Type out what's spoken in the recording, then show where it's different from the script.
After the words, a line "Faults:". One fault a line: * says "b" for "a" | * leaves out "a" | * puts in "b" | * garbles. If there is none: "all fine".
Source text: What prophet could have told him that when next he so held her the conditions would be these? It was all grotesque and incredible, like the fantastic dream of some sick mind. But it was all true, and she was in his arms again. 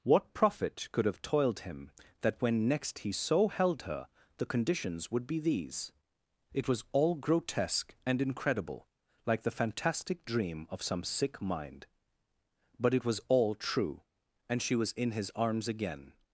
What prophet could have toiled him that when next he so held her the conditions would be these? It was all grotesque and incredible, like the fantastic dream of some sick mind. But it was all true, and she was in his arms again.
Faults:
* says "toiled" for "told"